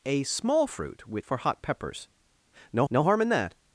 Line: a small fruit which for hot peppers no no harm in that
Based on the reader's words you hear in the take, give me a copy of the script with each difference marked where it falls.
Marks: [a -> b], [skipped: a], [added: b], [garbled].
a small fruit which for hot peppers no no harm in that